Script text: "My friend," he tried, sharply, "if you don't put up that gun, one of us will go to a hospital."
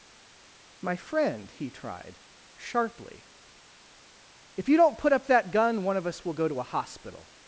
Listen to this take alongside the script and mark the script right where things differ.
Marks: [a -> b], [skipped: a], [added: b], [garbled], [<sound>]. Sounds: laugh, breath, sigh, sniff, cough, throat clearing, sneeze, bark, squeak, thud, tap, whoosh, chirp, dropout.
"My friend," he tried, sharply, "if you don't put up that gun, one of us will go to a hospital."